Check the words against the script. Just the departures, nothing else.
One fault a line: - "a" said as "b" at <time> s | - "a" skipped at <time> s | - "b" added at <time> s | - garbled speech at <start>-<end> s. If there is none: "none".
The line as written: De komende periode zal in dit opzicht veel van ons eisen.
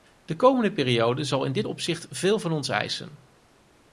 none